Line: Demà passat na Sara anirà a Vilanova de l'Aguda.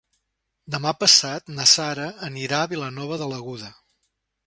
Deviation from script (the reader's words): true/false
false